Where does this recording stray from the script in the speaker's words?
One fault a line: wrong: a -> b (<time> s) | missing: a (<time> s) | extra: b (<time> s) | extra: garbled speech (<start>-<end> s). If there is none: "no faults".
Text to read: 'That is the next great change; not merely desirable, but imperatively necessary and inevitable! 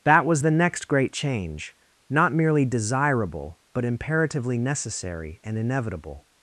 wrong: is -> was (0.2 s)